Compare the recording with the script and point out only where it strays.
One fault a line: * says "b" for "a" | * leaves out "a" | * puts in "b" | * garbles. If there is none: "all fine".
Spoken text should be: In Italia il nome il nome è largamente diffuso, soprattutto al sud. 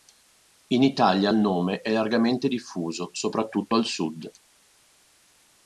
* leaves out "il nome"